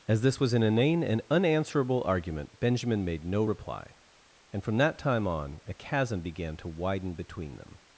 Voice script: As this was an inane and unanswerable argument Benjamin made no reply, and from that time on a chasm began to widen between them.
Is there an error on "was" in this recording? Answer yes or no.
no